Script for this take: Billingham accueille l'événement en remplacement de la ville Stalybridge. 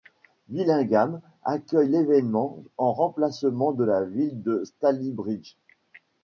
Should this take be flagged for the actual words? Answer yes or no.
yes